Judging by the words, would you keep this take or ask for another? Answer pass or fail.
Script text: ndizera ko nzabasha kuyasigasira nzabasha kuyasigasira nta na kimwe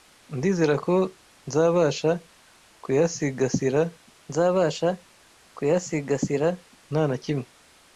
pass